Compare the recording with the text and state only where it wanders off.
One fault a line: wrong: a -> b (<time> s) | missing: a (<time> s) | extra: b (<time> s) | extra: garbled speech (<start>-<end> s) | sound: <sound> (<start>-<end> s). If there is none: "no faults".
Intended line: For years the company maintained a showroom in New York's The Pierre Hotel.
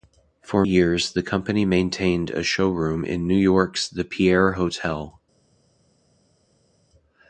no faults